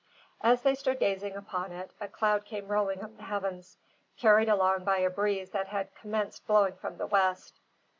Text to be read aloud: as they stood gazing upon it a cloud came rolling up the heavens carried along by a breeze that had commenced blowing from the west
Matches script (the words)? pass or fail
pass